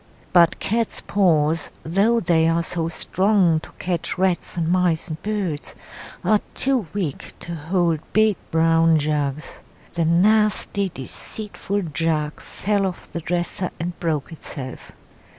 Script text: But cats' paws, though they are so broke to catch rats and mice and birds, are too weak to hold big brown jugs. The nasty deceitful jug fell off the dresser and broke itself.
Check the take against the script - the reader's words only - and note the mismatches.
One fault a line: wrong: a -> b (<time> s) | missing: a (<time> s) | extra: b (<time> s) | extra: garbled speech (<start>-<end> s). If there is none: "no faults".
wrong: broke -> strong (2.9 s)